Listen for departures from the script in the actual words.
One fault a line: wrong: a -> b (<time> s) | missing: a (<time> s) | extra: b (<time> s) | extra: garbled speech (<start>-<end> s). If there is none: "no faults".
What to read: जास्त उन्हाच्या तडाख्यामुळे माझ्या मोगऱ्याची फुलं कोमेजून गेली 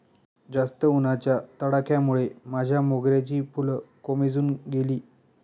no faults